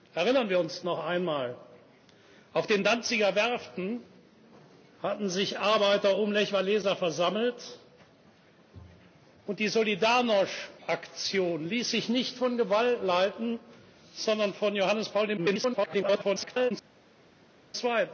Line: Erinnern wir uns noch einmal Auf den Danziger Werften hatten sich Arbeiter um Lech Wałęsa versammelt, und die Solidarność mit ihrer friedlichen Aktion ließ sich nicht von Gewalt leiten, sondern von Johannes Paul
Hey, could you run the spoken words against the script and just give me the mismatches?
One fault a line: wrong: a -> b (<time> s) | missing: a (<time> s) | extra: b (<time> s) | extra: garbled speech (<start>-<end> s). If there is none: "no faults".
missing: mit ihrer friedlichen (10.7 s)
extra: garbled speech (15.4-16.7 s)